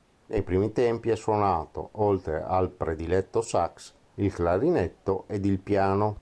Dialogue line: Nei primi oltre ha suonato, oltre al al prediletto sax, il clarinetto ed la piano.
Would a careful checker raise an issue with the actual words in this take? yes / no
yes